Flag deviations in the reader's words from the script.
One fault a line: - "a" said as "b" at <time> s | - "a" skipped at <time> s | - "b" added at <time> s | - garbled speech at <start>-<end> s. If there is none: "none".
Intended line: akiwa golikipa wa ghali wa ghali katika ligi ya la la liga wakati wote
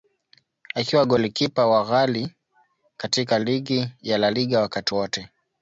- "wa ghali" skipped at 2.4 s
- "la" skipped at 4.3 s